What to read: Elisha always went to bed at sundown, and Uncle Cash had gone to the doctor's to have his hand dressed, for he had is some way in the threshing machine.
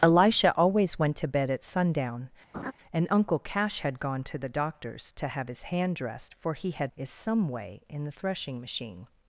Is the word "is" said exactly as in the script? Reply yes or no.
yes